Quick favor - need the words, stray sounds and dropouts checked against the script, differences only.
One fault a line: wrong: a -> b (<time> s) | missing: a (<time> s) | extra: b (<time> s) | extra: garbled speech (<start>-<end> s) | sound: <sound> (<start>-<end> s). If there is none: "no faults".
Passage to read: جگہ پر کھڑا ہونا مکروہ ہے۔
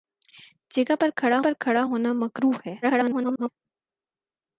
extra: پر کھڑا (1.4 s)
extra: garbled speech (2.8-3.5 s)